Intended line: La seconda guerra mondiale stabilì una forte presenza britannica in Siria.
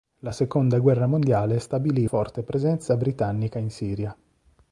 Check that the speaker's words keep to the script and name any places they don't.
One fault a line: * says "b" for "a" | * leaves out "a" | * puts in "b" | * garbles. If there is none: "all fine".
* leaves out "una"